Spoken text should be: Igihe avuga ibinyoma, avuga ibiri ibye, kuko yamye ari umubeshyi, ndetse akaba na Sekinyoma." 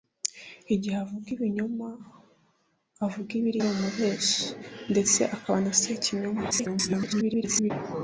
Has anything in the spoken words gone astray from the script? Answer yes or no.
yes